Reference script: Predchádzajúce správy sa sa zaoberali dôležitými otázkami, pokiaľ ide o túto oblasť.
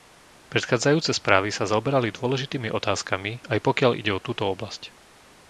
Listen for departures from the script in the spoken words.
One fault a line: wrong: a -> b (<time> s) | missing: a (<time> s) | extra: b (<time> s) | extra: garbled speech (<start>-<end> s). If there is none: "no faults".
missing: sa (1.7 s)
extra: aj (3.5 s)